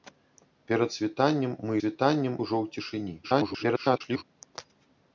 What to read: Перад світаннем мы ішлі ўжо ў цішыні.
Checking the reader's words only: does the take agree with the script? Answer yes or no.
no